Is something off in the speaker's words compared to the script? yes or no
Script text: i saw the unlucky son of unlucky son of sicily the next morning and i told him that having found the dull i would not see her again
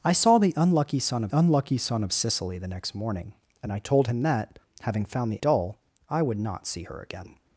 no